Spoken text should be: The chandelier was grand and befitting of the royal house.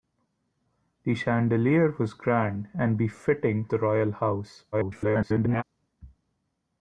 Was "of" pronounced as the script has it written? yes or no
no